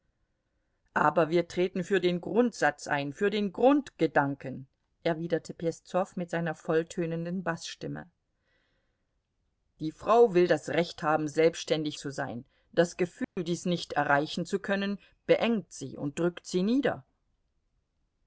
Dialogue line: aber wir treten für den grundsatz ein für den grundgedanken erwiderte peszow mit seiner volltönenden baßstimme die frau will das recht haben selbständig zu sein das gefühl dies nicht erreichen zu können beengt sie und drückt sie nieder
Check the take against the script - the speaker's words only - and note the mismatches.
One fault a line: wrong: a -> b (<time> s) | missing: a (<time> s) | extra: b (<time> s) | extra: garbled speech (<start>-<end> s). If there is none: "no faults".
no faults